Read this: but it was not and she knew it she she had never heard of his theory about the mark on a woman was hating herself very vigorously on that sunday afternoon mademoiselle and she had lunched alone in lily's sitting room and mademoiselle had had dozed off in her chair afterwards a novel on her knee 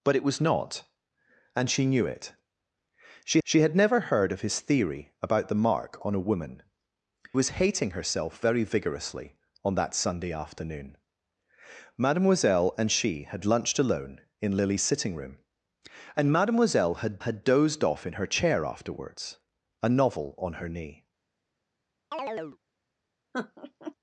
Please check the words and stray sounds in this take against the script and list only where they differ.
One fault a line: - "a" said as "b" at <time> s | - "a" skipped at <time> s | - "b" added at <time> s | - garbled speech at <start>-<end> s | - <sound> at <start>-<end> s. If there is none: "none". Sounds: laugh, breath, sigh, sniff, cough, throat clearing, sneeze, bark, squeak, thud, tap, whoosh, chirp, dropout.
- chirp at 22.1-22.6 s
- laugh at 23.3-23.9 s